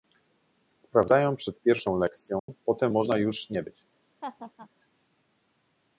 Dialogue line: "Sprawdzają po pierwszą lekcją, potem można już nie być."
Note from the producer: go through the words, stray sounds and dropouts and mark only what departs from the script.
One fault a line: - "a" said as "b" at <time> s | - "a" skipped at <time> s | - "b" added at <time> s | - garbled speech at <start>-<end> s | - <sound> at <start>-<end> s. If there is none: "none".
- "po" said as "przed" at 1.4 s
- dropout at 2.4-2.5 s
- laugh at 4.2-4.7 s